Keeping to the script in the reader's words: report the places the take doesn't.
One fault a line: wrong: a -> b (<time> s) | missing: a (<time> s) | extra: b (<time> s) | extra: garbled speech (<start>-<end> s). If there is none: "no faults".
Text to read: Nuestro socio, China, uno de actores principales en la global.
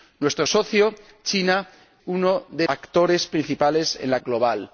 no faults